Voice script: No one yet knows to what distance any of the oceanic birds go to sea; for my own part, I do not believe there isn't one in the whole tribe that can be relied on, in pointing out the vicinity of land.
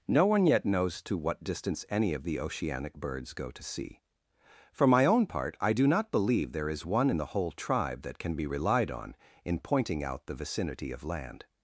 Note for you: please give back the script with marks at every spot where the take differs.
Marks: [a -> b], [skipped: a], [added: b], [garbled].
No one yet knows to what distance any of the oceanic birds go to sea; for my own part, I do not believe there [isn't -> is] one in the whole tribe that can be relied on, in pointing out the vicinity of land.